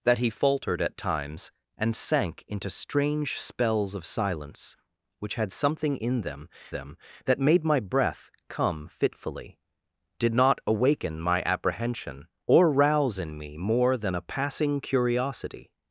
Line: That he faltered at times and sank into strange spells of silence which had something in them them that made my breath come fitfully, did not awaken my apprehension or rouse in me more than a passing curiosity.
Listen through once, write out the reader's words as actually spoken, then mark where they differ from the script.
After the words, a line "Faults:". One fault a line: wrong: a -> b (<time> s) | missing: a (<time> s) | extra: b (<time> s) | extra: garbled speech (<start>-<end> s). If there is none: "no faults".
That he faltered at times and sank into strange spells of silence which had something in them them that made my breath come fitfully, did not awaken my apprehension or rouse in me more than a passing curiosity.
Faults:
no faults